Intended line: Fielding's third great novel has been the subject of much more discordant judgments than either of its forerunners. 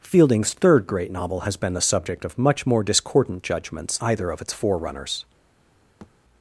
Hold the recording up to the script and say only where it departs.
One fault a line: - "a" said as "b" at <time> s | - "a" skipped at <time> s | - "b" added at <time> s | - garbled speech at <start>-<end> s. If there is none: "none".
- "than" skipped at 4.0 s